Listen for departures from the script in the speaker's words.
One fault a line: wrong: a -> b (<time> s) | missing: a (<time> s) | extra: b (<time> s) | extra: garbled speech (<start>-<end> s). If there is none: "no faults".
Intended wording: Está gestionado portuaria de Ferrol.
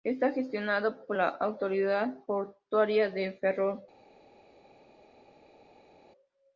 extra: por la autoridad (1.1 s)